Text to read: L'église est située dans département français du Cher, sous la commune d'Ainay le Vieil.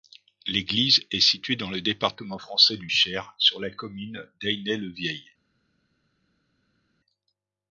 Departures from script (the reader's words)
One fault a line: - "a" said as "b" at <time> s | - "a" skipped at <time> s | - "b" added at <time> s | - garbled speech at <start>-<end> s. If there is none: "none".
- "le" added at 1.7 s
- "sous" said as "sur" at 3.4 s